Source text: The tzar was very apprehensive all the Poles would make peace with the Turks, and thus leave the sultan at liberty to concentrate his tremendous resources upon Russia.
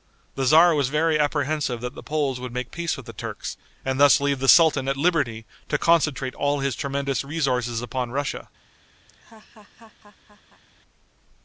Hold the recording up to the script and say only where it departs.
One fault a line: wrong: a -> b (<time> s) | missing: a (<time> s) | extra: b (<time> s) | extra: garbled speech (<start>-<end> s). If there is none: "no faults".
wrong: all -> that (1.8 s)
extra: all (6.3 s)